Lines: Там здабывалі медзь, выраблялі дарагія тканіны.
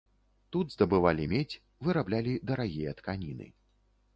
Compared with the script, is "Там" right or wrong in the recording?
wrong